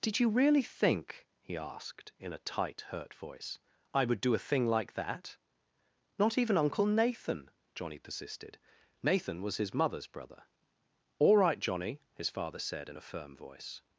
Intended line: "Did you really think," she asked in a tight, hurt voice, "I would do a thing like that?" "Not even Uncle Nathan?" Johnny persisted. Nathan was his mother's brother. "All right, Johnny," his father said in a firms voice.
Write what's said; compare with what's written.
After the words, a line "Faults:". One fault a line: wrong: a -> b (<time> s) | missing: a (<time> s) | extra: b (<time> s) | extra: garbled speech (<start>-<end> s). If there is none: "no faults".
"Did you really think," he asked in a tight, hurt voice, "I would do a thing like that?" "Not even Uncle Nathan?" Johnny persisted. Nathan was his mother's brother. "All right, Johnny," his father said in a firm voice.
Faults:
wrong: she -> he (1.4 s)
wrong: firms -> firm (13.0 s)